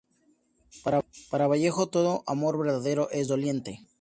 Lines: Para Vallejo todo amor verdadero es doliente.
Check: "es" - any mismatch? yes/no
no